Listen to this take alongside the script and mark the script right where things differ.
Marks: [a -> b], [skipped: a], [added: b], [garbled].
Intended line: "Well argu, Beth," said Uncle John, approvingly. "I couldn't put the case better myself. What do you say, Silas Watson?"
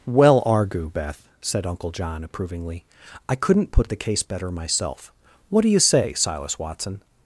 "Well argu, Beth," said Uncle John, approvingly. "I couldn't put the case better myself. What do you say, Silas Watson?"